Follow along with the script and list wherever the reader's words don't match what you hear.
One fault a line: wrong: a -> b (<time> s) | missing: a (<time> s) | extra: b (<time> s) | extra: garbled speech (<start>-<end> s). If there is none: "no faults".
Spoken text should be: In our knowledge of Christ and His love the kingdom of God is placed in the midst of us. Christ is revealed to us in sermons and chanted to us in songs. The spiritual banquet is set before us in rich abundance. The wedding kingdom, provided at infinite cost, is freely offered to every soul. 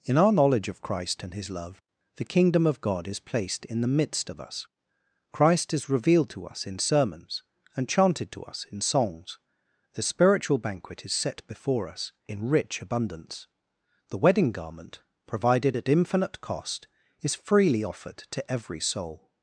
wrong: kingdom -> garment (14.5 s)